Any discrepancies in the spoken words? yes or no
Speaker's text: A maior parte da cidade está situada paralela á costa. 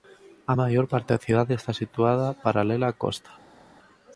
no